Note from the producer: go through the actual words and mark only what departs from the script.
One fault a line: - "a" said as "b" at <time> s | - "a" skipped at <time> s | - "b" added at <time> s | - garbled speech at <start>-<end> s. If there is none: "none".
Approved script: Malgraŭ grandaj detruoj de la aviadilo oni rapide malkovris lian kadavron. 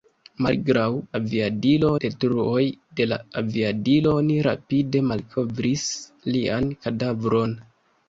- "grandaj" said as "aviadilo" at 1.2 s